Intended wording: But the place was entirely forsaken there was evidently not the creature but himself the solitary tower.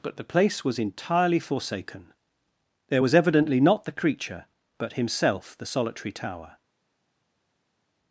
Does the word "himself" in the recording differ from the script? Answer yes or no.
no